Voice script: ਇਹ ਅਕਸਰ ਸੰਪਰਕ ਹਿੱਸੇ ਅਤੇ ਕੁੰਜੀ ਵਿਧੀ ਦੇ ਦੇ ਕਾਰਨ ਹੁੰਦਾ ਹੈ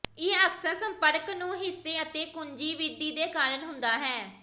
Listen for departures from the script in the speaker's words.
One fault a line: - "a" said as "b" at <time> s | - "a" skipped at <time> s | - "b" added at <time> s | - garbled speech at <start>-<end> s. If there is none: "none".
- "ਨੂੰ" added at 1.3 s
- "ਦੇ" skipped at 3.3 s